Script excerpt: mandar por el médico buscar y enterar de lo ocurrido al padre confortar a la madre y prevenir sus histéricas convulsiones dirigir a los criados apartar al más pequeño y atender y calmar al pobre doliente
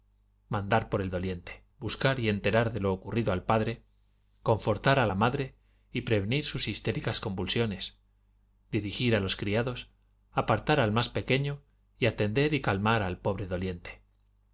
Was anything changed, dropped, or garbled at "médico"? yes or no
yes